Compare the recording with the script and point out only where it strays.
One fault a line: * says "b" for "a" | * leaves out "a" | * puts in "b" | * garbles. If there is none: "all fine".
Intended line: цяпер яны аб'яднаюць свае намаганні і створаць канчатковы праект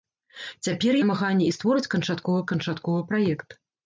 * leaves out "яны аб'яднаюць свае"
* puts in "канчатковы"